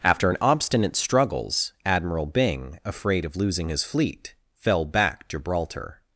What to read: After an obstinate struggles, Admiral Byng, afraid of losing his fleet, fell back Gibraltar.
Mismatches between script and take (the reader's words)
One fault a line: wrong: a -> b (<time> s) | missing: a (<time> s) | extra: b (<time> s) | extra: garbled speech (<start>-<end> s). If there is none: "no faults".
no faults